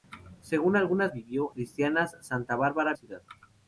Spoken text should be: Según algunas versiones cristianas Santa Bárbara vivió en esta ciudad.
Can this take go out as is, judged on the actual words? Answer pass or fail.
fail